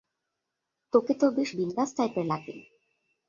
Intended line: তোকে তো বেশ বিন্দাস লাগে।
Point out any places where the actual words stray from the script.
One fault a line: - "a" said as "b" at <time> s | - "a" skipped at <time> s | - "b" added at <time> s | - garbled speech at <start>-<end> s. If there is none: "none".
- "টাইপের" added at 2.0 s